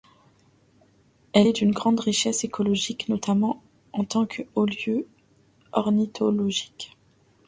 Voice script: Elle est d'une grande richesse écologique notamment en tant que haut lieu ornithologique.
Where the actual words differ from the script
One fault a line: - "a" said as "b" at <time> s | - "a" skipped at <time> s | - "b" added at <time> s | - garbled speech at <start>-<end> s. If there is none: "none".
none